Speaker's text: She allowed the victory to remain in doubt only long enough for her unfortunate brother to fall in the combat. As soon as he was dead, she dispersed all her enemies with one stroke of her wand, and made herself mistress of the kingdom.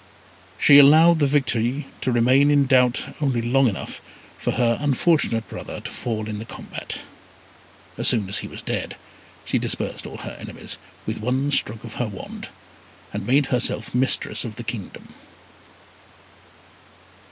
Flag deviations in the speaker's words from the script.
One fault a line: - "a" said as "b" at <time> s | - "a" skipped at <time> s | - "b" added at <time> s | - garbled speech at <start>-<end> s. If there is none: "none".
none